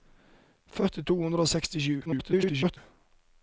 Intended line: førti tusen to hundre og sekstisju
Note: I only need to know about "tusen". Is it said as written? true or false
false